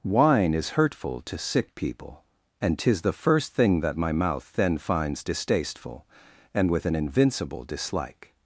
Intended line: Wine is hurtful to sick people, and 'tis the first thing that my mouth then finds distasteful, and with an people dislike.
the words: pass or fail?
fail